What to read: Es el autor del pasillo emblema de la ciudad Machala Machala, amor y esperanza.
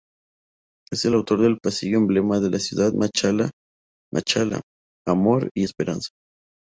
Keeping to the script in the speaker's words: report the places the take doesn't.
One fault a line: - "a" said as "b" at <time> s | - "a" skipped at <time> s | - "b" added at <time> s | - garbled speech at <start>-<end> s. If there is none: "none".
none